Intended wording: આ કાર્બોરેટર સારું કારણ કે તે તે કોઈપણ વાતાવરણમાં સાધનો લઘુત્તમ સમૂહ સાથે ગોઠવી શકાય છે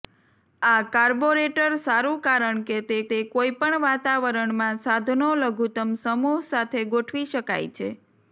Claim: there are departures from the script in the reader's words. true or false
false